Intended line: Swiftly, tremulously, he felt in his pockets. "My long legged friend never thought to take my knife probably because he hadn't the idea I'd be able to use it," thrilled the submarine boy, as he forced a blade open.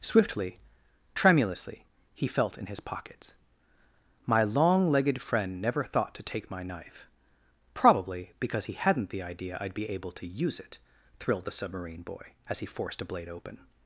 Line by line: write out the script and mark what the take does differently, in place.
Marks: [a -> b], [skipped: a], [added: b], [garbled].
Swiftly, tremulously, he felt in his pockets. "My long legged friend never thought to take my knife probably because he hadn't the idea I'd be able to use it," thrilled the submarine boy, as he forced a blade open.